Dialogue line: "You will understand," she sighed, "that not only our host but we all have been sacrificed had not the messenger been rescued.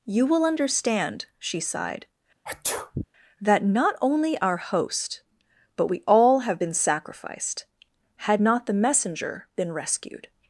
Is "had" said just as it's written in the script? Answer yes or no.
yes